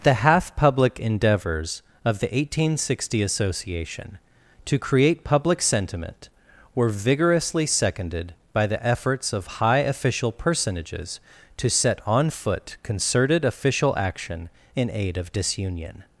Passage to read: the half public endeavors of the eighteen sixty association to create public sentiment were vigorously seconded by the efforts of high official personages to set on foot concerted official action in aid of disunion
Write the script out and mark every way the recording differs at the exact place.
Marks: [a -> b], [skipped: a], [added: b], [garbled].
the half public endeavors of the eighteen sixty association to create public sentiment were vigorously seconded by the efforts of high official personages to set on foot concerted official action in aid of disunion